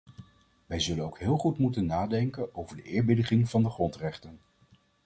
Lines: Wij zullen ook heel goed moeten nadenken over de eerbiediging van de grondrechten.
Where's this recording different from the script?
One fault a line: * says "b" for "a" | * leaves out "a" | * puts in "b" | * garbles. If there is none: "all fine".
all fine